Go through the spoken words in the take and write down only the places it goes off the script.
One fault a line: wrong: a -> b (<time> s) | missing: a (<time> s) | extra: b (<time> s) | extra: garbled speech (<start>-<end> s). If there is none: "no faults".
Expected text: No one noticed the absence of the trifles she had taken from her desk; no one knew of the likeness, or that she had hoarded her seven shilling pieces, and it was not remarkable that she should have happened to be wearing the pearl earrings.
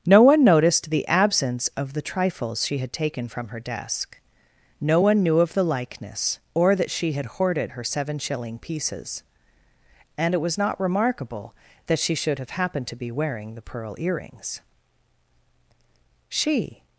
extra: She (16.3 s)